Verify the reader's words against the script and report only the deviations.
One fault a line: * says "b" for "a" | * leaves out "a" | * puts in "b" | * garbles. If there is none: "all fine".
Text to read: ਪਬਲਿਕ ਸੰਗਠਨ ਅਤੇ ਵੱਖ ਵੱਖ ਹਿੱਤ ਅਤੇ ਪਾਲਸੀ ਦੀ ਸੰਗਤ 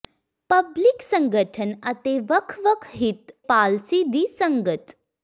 * leaves out "ਅਤੇ"